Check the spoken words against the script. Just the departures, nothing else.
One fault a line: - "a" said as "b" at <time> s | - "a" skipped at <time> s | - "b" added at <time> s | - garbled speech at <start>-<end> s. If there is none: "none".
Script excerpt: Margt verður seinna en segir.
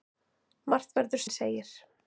- "seinna" skipped at 1.2 s